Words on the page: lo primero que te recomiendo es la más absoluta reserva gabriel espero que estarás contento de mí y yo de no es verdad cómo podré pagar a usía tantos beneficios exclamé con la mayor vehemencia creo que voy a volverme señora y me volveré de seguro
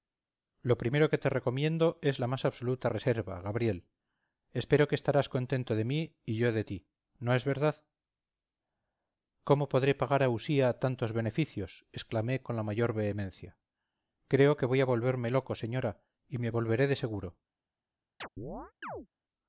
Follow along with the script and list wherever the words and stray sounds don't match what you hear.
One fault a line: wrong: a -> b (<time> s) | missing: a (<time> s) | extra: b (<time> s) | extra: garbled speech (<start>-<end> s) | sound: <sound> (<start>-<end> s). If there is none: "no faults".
extra: ti (6.6 s)
extra: loco (15.3 s)
sound: chirp (18.2-19.1 s)